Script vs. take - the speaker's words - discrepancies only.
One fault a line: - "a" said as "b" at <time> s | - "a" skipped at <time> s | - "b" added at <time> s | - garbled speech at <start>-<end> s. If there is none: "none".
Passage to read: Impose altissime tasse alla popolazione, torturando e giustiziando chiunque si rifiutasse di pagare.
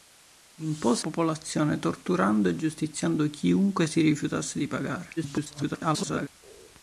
- "altissime tasse alla" skipped at 1.1 s
- garbled speech at 5.2-6.3 s